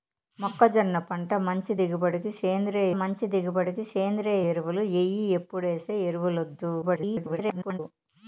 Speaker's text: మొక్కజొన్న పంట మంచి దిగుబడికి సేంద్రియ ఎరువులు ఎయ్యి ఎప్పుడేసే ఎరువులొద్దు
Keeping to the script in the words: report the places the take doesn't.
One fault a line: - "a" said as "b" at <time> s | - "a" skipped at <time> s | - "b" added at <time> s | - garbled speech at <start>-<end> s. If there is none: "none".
- "మంచి దిగుబడికి సేంద్రియ" added at 3.0 s
- garbled speech at 6.8-7.8 s